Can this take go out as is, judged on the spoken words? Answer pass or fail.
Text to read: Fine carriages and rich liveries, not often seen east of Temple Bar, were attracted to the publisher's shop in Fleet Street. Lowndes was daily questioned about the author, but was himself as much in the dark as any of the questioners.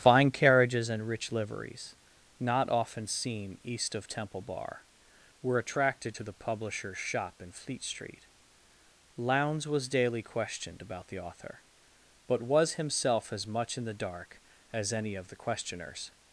pass